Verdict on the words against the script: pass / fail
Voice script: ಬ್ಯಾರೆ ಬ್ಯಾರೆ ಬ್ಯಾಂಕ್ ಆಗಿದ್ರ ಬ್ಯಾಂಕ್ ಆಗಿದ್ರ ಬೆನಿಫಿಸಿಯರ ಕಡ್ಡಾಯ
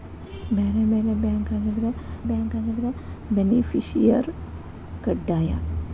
pass